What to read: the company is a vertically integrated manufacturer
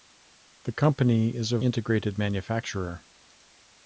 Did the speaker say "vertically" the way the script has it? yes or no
no